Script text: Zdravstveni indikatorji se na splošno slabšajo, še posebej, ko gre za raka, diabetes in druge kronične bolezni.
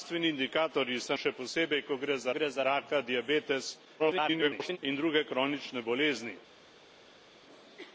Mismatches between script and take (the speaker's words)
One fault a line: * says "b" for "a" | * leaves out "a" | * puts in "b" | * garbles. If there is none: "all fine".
* leaves out "na splošno slabšajo"
* puts in "gre za"
* garbles